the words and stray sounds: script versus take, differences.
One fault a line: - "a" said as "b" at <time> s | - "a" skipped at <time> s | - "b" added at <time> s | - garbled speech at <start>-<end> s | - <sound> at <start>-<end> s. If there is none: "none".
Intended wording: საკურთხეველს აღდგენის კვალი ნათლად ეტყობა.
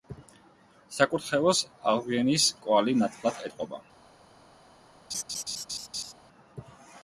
- laugh at 5.1-6.1 s